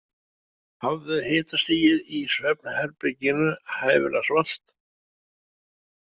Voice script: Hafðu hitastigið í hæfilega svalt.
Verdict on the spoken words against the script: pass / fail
fail